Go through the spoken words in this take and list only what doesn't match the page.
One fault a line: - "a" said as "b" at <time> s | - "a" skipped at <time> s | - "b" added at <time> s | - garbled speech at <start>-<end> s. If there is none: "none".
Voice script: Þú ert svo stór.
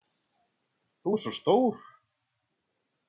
none